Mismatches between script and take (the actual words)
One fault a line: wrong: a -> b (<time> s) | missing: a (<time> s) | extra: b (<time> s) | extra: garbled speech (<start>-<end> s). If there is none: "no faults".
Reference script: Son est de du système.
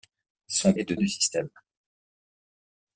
no faults